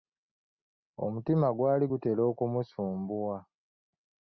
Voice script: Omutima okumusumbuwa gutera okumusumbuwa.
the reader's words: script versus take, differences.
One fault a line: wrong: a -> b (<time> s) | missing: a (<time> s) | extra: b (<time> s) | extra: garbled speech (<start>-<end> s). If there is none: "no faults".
wrong: okumusumbuwa -> gwali (1.6 s)